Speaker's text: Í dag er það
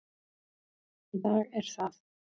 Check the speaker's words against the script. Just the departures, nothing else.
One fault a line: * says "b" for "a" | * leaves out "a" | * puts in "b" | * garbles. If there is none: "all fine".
all fine